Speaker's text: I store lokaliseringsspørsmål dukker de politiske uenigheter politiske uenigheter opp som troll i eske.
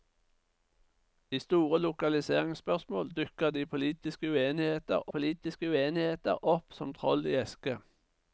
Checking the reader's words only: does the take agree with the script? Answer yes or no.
yes